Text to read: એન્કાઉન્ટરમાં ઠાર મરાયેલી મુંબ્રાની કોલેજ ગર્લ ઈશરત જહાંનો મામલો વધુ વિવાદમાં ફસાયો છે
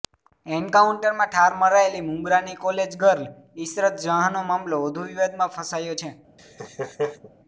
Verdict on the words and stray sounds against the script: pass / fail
fail